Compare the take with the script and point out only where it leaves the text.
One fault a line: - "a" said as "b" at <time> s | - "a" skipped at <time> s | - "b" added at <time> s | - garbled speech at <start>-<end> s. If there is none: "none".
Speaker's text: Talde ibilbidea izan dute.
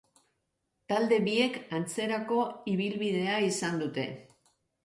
- "biek antzerako" added at 1.3 s